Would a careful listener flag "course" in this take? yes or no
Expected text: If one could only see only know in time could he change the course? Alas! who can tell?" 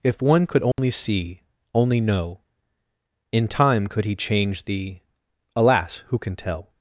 yes